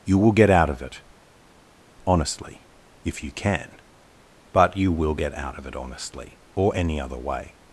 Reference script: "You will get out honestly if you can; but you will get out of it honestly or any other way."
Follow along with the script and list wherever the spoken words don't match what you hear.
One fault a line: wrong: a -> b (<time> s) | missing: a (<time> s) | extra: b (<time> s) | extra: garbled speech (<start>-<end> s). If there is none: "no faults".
extra: of it (0.7 s)